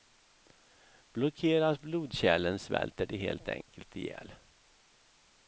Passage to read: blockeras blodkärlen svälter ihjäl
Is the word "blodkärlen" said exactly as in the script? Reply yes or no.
yes